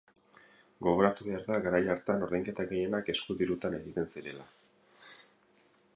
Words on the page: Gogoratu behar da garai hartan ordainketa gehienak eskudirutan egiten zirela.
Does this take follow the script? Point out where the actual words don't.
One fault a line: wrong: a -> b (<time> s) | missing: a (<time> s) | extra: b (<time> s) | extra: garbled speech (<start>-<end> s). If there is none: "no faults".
no faults